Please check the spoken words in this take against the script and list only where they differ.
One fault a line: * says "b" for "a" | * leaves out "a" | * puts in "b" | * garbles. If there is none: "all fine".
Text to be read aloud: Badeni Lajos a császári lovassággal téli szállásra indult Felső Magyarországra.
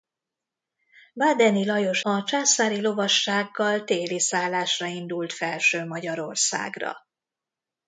all fine